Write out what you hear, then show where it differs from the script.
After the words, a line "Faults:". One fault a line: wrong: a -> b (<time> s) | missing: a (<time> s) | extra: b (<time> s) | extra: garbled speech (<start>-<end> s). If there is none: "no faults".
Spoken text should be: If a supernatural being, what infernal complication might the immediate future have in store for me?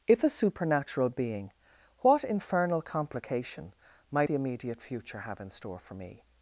If a supernatural being, what infernal complication might the immediate future have in store for me?
Faults:
no faults